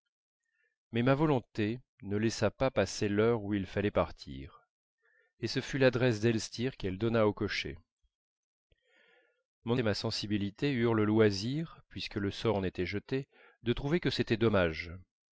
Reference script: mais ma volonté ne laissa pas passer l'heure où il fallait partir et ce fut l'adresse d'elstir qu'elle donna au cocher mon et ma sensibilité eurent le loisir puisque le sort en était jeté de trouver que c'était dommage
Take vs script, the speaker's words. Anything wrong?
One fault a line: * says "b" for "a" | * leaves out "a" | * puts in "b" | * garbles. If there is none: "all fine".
all fine